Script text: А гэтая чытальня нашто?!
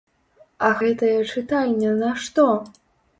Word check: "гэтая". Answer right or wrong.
right